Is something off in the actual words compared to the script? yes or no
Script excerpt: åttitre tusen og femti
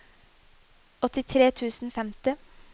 no